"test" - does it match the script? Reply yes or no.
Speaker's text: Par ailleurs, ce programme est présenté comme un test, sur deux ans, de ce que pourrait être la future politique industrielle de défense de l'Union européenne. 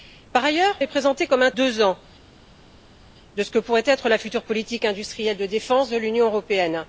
no